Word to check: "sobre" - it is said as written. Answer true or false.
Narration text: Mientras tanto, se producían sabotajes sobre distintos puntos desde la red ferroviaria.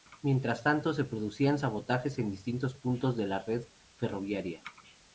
false